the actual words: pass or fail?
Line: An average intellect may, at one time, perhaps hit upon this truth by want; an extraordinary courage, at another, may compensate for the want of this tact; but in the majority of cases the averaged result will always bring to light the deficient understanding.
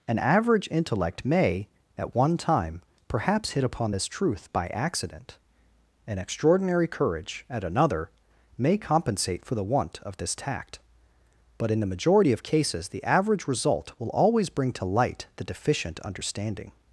fail